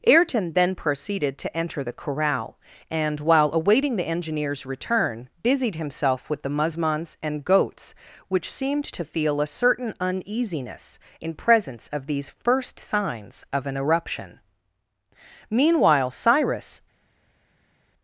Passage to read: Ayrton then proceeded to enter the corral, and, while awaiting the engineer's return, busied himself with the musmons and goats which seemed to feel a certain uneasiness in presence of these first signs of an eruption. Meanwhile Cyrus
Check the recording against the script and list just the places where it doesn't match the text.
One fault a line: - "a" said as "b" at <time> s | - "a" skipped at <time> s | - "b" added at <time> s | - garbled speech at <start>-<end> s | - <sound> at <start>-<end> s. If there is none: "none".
none